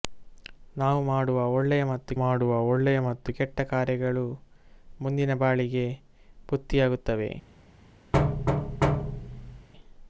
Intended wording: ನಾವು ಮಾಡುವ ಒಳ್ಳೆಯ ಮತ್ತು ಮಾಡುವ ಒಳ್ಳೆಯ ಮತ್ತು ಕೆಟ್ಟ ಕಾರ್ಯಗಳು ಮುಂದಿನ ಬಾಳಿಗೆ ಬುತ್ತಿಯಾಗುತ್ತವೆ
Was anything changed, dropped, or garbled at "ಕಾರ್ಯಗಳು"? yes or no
no